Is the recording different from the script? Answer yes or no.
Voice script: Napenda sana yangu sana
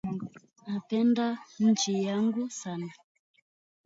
yes